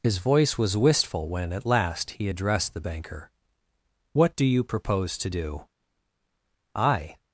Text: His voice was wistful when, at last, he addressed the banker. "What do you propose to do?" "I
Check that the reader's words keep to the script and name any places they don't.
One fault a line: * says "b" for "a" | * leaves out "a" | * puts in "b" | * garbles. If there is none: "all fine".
all fine